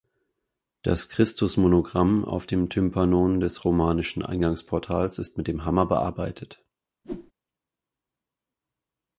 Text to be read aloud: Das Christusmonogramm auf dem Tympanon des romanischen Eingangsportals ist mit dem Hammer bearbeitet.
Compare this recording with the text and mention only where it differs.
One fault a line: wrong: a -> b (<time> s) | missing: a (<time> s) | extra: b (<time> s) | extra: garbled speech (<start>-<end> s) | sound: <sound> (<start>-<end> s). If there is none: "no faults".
sound: whoosh (7.0-7.3 s)